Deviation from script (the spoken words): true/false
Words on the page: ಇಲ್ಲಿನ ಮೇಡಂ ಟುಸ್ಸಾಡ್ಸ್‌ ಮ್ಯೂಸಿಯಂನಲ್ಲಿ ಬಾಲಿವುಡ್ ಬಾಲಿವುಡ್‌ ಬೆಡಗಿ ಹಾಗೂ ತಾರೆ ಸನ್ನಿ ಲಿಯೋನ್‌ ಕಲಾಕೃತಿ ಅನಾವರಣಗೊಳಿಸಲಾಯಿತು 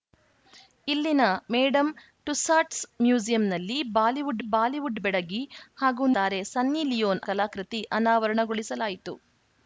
false